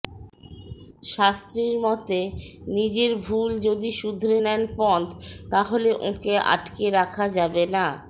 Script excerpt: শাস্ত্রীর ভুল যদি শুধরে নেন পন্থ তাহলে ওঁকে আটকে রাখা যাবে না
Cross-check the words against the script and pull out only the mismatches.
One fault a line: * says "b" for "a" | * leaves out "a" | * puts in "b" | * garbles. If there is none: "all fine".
* puts in "মতে নিজের"